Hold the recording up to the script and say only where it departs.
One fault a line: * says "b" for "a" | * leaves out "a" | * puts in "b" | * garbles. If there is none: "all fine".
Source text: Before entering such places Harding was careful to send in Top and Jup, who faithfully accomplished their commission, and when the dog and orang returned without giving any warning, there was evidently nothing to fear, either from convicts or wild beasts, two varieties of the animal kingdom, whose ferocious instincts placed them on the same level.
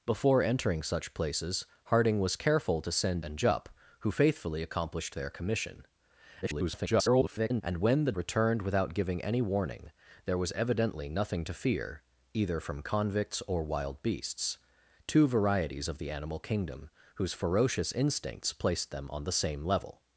* leaves out "in Top"
* garbles
* leaves out "dog and orang"